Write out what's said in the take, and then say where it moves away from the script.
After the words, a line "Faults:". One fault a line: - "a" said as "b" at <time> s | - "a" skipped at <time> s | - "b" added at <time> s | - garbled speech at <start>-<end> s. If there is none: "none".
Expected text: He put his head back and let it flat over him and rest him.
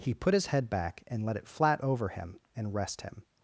He put his head back and let it flat over him and rest him.
Faults:
none